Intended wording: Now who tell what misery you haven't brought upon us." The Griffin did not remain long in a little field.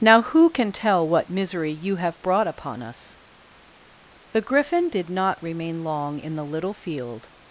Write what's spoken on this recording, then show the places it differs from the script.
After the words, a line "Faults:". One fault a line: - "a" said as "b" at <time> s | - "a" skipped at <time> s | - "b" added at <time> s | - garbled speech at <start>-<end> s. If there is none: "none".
Now who can tell what misery you have brought upon us." The Griffin did not remain long in the little field.
Faults:
- "can" added at 0.5 s
- "haven't" said as "have" at 2.0 s
- "a" said as "the" at 6.4 s